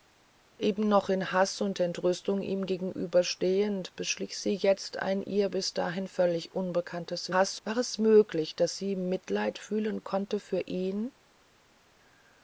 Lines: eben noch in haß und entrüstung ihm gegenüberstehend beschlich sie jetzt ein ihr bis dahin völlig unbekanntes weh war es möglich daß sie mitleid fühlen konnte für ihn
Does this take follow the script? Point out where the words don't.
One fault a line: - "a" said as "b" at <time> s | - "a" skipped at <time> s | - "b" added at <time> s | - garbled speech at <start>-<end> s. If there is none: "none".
- "weh" said as "haß" at 7.3 s